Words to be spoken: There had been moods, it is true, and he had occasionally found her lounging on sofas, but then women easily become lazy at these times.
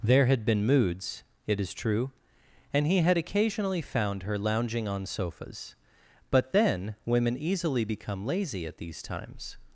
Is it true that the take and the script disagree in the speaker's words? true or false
false